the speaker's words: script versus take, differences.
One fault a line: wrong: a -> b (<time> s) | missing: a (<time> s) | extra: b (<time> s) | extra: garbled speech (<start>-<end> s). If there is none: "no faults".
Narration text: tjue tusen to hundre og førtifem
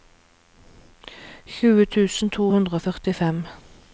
no faults